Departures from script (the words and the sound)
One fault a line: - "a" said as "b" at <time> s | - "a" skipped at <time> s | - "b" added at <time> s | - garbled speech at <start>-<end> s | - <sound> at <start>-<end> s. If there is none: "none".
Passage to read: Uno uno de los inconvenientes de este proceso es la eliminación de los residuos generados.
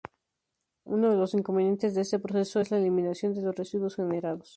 - "uno" skipped at 1.1 s